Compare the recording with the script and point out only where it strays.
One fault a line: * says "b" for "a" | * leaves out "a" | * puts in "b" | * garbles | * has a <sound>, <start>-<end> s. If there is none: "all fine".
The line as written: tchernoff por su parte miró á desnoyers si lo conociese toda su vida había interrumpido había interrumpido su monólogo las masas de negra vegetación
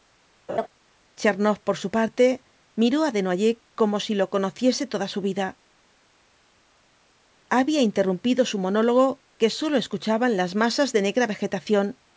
* has a laugh, 0.5-0.7 s
* puts in "como"
* says "su monólogo que sólo escuchaban" for "había interrumpido su monólogo"